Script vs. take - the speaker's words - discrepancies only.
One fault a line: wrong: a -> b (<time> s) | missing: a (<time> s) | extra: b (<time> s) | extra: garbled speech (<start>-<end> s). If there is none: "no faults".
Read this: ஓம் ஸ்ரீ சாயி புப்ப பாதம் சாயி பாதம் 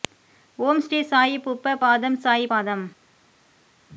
no faults